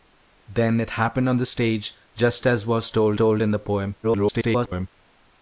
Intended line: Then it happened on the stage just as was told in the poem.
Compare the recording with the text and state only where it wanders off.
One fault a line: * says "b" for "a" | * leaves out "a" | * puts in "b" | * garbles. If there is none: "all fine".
* puts in "told"
* garbles